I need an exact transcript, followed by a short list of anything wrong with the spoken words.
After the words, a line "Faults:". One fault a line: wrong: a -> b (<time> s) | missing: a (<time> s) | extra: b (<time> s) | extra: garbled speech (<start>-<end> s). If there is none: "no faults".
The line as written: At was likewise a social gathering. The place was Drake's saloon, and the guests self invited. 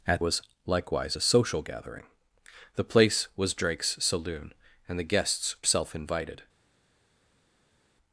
At was likewise a social gathering. The place was Drake's saloon, and the guests self invited.
Faults:
no faults